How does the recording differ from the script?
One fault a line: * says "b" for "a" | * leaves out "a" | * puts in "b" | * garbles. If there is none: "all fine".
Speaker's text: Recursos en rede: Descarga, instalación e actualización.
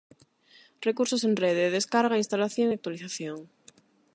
all fine